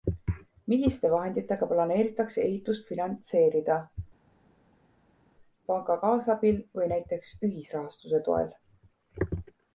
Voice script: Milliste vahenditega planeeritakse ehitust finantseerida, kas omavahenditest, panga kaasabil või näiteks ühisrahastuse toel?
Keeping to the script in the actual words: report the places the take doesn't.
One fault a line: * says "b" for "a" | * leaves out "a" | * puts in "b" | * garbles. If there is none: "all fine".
* leaves out "kas omavahenditest"